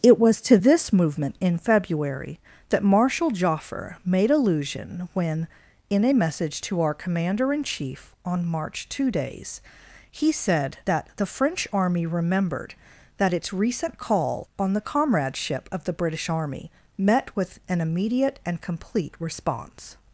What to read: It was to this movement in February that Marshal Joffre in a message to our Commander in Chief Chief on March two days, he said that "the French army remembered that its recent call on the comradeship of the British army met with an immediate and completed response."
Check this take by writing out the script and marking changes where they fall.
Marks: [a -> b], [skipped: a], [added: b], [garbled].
It was to this movement in February that Marshal Joffre [added: made allusion when] in a message to our Commander in Chief [skipped: Chief] on March two days, he said that "the French army remembered that its recent call on the comradeship of the British army met with an immediate and [completed -> complete] response."